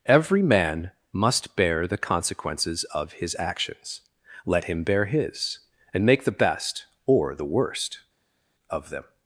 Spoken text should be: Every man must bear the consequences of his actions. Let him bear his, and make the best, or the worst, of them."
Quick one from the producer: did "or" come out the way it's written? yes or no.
yes